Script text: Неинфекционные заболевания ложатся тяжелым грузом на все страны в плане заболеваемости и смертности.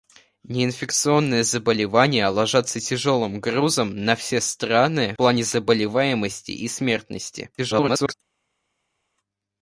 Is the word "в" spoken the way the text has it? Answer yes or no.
no